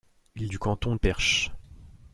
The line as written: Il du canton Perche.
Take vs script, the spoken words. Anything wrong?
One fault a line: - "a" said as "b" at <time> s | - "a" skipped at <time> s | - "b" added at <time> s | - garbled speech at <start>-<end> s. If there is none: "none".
none